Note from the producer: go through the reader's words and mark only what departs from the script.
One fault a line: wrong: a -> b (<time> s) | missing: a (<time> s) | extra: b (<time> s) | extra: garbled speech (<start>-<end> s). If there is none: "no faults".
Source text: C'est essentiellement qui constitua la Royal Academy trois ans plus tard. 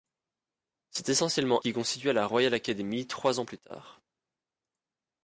no faults